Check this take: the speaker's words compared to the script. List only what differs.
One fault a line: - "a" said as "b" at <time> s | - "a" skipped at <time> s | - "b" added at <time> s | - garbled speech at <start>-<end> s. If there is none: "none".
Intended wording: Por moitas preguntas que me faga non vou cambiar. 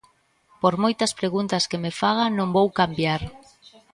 none